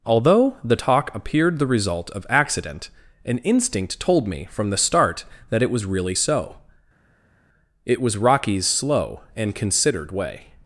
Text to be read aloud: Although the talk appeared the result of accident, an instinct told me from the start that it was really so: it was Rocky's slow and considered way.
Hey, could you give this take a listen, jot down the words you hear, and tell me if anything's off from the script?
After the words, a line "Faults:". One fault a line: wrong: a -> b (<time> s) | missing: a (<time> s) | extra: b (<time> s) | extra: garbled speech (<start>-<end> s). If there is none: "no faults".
Although the talk appeared the result of accident, an instinct told me from the start that it was really so: it was Rocky's slow and considered way.
Faults:
no faults